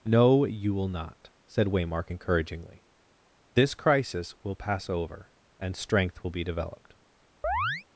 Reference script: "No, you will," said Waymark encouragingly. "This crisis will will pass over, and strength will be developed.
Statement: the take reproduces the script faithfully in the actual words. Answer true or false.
false